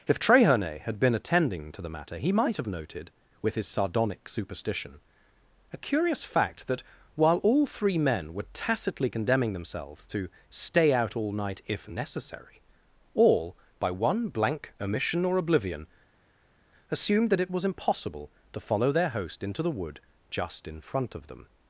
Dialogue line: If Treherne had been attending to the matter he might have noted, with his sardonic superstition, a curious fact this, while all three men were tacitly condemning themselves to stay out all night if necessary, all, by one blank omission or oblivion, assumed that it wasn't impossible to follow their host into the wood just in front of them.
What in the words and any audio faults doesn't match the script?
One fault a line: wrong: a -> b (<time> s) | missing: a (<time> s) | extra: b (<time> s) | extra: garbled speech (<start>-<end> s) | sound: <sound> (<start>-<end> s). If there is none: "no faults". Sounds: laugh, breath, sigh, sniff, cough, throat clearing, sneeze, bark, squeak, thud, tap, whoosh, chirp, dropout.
wrong: this -> that (6.7 s)
wrong: wasn't -> was (17.5 s)